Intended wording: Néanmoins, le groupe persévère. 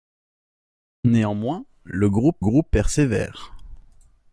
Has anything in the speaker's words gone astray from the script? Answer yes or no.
yes